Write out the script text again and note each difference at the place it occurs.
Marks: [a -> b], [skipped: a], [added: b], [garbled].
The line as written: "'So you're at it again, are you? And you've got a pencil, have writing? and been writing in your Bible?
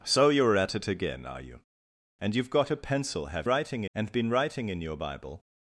"'So you're at it again, are you? And you've got a pencil, have writing? and been writing in your Bible?